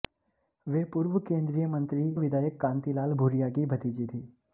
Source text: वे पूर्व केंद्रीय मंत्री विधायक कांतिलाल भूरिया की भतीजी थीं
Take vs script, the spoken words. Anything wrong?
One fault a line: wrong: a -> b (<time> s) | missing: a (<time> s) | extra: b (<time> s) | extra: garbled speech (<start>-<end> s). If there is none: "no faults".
no faults